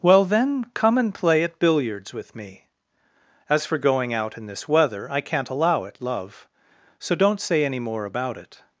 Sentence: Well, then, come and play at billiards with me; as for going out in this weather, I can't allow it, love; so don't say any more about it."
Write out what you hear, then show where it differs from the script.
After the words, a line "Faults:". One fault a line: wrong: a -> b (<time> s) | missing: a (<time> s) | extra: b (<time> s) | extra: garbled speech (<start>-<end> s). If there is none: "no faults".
Well, then, come and play at billiards with me; as for going out in this weather, I can't allow it, love; so don't say any more about it."
Faults:
no faults